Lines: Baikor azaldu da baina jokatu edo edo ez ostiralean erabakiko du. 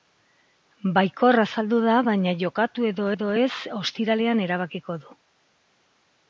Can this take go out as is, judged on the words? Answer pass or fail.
pass